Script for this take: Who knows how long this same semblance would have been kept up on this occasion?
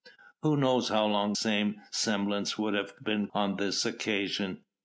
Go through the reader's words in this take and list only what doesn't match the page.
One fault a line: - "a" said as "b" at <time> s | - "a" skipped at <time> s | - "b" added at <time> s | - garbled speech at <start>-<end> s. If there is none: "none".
- "this" skipped at 1.4 s
- "kept up" skipped at 3.3 s